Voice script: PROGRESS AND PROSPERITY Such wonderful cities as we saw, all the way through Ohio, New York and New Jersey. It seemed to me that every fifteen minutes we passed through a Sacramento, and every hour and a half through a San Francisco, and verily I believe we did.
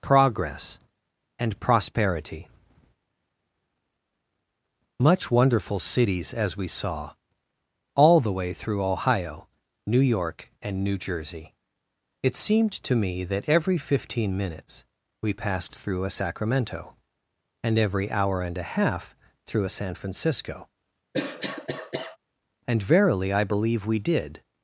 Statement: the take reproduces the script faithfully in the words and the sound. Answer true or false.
false